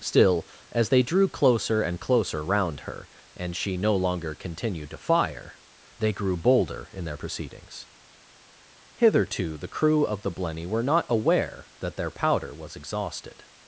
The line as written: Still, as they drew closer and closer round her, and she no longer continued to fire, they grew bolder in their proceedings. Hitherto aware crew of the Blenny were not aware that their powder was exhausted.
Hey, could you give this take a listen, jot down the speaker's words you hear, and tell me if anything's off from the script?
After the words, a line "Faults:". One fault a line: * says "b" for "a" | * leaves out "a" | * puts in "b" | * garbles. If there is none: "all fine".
Still, as they drew closer and closer round her, and she no longer continued to fire, they grew bolder in their proceedings. Hitherto the crew of the Blenny were not aware that their powder was exhausted.
Faults:
* says "the" for "aware"